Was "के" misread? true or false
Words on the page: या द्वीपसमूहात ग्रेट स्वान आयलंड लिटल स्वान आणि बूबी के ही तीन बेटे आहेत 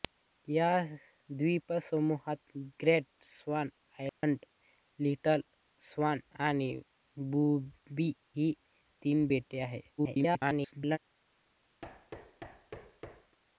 true